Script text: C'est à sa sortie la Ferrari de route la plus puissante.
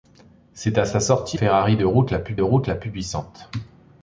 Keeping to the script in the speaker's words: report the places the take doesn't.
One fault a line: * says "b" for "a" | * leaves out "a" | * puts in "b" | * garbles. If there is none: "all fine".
* leaves out "la"
* puts in "route la plus"